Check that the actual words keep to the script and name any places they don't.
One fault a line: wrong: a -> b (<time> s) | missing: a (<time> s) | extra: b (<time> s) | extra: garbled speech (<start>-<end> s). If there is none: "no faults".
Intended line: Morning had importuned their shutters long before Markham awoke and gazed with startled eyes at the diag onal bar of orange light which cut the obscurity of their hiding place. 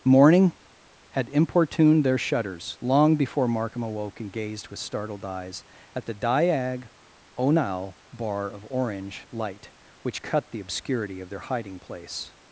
no faults